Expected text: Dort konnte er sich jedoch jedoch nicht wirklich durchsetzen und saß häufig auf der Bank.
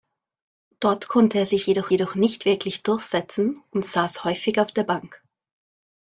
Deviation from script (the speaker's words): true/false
false